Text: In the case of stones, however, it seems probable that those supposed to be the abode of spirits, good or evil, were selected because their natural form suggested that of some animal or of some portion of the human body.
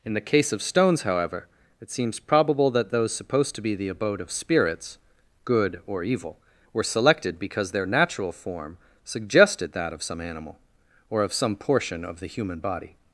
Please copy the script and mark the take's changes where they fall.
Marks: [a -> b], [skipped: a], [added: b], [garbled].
In the case of stones, however, it seems probable that those supposed to be the abode of spirits, good or evil, were selected because their natural form suggested that of some animal or of some portion of the human body.